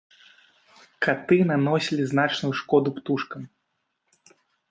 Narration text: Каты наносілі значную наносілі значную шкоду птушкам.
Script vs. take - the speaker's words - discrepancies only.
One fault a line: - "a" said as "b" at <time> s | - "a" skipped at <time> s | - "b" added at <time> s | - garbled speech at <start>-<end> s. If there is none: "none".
- "наносілі значную" skipped at 2.5 s